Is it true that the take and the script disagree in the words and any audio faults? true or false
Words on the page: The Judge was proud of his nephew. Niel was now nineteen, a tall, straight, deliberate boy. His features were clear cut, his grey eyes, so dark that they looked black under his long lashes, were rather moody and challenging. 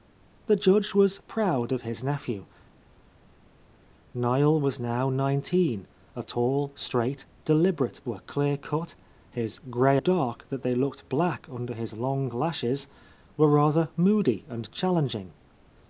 true